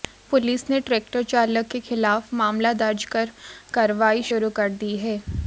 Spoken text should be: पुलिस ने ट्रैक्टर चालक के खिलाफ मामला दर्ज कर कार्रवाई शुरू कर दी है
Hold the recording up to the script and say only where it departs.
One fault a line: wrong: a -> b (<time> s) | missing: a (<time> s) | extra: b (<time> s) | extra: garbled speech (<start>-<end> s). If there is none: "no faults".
no faults